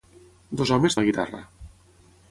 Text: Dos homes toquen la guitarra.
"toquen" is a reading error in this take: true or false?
true